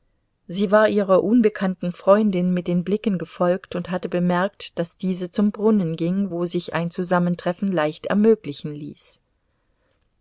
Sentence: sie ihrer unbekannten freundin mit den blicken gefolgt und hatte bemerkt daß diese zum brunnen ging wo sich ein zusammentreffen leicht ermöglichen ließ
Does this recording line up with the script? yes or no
no